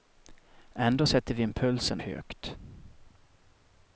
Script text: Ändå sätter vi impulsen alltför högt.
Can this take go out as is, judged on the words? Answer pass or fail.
fail